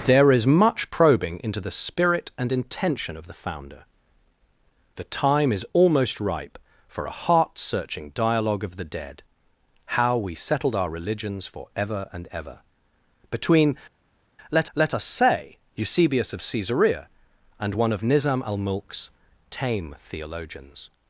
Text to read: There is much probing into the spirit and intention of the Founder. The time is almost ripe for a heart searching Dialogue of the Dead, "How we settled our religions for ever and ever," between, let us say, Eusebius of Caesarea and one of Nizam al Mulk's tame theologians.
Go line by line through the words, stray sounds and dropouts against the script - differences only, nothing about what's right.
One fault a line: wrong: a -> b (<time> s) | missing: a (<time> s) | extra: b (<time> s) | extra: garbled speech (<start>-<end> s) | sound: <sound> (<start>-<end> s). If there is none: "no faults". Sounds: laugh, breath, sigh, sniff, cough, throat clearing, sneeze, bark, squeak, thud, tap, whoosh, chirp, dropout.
extra: let (14.7 s)